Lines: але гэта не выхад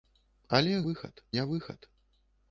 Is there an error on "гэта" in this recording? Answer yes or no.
yes